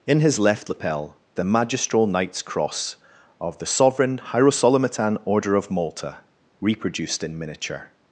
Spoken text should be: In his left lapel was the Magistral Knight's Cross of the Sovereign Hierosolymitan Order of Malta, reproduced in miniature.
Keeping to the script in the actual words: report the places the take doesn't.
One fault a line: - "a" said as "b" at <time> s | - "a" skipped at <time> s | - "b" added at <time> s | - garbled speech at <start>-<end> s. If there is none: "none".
- "was" skipped at 1.2 s